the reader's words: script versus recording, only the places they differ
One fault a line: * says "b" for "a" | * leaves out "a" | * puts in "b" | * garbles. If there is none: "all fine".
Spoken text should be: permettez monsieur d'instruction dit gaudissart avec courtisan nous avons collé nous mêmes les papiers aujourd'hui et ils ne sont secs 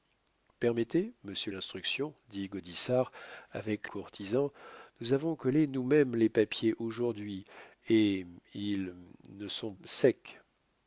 all fine